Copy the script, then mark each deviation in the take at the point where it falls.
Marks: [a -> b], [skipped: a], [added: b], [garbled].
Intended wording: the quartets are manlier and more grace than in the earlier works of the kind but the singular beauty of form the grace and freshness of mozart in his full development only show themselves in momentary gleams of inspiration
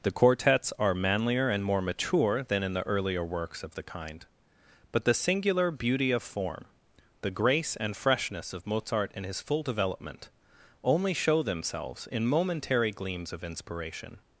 the quartets are manlier and more [grace -> mature] than in the earlier works of the kind but the singular beauty of form the grace and freshness of mozart in his full development only show themselves in momentary gleams of inspiration